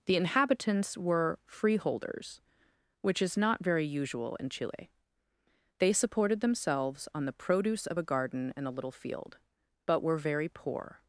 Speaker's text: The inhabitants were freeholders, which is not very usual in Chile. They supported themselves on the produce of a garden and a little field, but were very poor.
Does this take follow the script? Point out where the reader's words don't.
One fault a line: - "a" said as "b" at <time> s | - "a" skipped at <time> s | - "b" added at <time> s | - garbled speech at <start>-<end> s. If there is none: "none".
none